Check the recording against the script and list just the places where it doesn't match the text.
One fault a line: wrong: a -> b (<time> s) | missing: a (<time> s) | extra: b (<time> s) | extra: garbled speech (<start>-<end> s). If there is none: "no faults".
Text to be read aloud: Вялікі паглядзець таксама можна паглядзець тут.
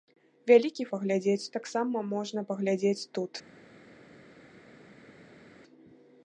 no faults